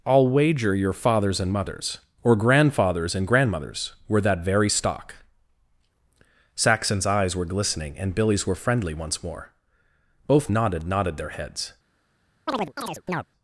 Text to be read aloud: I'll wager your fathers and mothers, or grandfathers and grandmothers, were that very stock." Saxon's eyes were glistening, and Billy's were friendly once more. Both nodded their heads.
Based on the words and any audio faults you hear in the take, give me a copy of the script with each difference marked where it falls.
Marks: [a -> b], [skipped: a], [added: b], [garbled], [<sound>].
I'll wager your fathers and mothers, or grandfathers and grandmothers, were that very stock." Saxon's eyes were glistening, and Billy's were friendly once more. Both nodded [added: nodded] their heads. [chirp]